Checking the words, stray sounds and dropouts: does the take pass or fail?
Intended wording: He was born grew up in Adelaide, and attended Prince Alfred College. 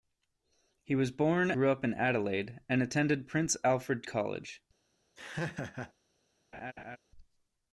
fail